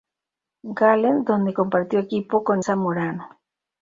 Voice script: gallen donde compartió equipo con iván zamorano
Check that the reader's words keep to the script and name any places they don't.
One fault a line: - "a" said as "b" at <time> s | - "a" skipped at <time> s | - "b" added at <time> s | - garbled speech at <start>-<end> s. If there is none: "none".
- "iván" skipped at 2.6 s